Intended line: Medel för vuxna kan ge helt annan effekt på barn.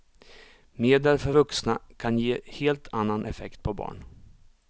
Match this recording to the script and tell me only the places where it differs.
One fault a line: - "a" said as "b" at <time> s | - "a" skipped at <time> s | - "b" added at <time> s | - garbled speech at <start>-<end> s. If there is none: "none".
none